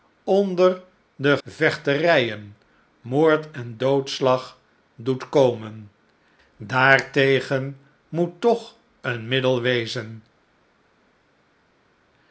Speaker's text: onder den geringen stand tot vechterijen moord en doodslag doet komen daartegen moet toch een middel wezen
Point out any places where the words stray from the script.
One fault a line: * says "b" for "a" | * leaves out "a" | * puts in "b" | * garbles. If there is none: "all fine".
* leaves out "geringen stand tot"